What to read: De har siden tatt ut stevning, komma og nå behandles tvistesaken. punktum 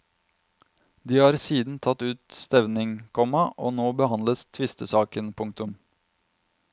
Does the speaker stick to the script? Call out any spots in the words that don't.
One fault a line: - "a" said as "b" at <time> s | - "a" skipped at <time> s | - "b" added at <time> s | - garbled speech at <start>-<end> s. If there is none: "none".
none